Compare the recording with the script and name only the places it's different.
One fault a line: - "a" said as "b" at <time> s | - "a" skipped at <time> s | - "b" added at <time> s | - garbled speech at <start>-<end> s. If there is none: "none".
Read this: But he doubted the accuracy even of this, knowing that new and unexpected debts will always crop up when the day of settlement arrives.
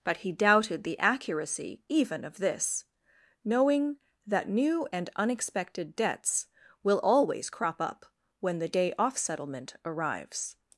- "of" said as "off" at 9.0 s